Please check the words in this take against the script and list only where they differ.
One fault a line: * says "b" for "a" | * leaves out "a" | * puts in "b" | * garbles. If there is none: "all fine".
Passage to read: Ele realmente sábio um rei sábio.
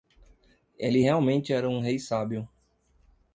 * says "era" for "sábio"